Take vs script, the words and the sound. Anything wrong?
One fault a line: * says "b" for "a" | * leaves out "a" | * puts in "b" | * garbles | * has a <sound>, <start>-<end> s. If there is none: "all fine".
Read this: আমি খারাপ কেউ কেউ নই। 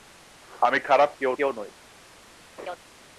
* has a laugh, 2.6-2.8 s